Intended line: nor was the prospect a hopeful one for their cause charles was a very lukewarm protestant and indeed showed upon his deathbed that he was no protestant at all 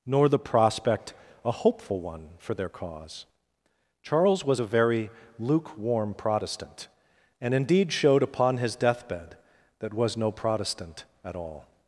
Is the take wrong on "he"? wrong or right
wrong